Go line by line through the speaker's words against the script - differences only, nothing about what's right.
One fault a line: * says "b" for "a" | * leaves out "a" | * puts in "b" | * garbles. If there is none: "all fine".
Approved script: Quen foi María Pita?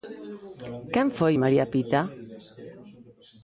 all fine